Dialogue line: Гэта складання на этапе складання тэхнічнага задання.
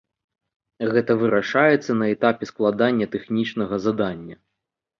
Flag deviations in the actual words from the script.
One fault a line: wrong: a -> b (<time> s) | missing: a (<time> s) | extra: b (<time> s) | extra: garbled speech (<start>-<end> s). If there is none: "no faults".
wrong: складання -> вырашаецца (1.2 s)